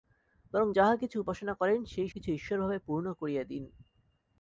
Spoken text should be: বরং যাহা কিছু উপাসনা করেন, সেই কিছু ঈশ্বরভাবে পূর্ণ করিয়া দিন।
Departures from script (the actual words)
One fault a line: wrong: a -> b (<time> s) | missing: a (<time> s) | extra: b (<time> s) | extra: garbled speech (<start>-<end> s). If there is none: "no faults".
no faults